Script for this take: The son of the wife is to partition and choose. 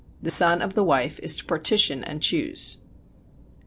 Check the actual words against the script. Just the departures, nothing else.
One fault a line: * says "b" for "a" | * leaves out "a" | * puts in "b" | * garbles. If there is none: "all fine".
all fine